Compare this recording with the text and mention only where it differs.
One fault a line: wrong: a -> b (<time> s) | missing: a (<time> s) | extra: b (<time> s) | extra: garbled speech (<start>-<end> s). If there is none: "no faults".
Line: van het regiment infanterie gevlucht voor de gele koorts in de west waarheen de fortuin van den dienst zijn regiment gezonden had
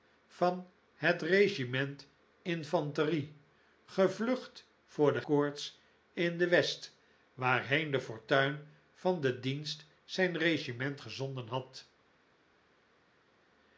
missing: gele (5.2 s)